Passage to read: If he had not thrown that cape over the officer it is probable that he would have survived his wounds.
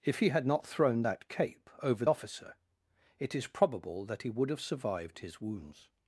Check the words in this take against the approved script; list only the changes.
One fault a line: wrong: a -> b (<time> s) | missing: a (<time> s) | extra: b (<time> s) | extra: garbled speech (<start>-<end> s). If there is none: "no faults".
missing: the (2.0 s)